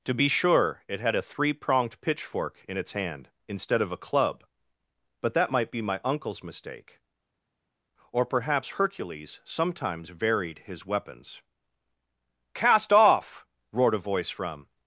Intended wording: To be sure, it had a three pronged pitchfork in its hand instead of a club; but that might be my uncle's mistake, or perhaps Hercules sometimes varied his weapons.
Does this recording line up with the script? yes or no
no